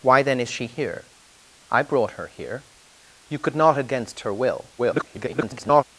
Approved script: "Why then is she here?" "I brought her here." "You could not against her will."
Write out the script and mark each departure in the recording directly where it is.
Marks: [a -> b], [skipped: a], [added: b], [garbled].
"Why then is she here?" "I brought her here." "You could not against her will." [garbled]